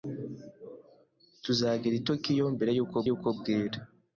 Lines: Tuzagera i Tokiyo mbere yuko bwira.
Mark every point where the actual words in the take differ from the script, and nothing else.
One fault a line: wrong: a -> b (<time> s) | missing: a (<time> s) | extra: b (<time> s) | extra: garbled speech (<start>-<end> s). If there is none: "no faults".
extra: yuko (3.1 s)